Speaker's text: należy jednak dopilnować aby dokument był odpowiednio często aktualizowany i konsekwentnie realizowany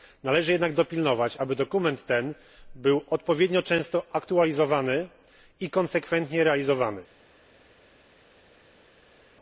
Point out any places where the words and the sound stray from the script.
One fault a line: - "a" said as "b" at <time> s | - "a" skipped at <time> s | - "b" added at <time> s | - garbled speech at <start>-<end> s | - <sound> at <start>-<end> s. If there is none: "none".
- "ten" added at 2.1 s